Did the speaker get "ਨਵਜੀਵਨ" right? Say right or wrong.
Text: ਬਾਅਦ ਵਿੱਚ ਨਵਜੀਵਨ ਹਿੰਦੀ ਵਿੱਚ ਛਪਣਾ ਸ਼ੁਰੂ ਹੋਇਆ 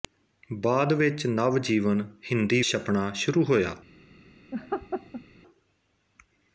right